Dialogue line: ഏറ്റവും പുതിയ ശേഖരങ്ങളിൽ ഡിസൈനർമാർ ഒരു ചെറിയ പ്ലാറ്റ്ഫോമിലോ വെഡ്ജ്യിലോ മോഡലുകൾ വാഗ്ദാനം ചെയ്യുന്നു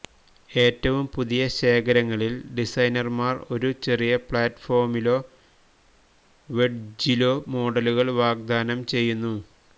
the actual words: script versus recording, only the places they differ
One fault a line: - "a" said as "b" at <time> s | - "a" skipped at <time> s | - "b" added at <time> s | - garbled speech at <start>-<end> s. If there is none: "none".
none